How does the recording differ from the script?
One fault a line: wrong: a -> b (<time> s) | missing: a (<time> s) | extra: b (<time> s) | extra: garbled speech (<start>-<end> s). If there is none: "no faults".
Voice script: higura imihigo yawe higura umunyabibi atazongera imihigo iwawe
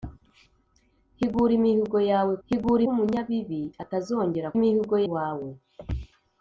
no faults